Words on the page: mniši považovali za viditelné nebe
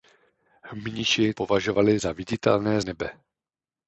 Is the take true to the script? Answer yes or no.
yes